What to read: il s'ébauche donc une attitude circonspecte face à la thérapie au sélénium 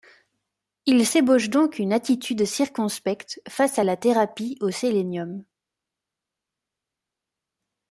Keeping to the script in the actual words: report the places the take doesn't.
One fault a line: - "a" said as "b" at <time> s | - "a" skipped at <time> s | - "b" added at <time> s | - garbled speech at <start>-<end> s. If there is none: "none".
none